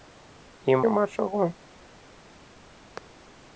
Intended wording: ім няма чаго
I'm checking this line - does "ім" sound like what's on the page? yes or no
yes